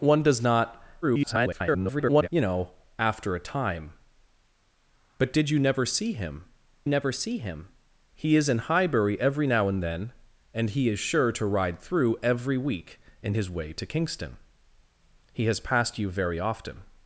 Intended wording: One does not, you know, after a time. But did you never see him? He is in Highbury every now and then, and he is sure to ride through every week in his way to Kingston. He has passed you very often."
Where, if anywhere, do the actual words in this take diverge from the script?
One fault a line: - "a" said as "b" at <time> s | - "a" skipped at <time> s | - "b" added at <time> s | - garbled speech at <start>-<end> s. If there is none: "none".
- garbled speech at 1.0-2.3 s
- "never see him" added at 6.9 s